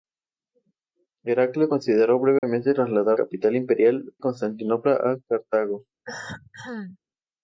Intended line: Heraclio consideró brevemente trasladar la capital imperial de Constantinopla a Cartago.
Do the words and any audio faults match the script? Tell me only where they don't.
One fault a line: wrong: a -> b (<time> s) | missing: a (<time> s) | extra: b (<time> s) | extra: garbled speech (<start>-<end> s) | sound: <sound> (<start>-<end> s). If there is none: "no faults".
sound: dropout (2.4-2.4 s)
missing: la (3.2 s)
missing: de (4.1 s)
sound: cough (6.0-7.0 s)